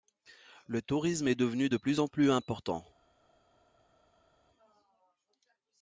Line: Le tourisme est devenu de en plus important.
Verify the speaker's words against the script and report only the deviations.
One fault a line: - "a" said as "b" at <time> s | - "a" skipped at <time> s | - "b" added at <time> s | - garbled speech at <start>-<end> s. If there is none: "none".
- "plus" added at 1.7 s